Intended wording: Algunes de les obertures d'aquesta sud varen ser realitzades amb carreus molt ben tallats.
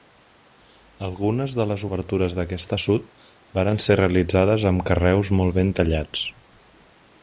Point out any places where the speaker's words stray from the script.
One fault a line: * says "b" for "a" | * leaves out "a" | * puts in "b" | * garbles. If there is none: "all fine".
all fine